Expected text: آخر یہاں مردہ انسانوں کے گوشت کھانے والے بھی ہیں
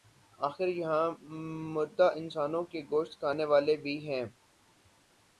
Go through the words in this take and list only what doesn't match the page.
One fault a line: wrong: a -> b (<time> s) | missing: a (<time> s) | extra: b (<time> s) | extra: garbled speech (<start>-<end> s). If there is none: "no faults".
no faults